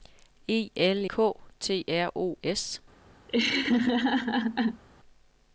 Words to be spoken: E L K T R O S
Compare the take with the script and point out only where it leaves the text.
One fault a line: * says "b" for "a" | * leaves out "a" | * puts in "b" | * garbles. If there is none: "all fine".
all fine